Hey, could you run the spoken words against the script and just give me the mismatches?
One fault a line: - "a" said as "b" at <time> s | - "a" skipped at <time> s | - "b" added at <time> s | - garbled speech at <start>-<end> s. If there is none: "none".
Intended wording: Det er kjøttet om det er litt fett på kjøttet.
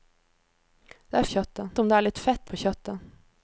none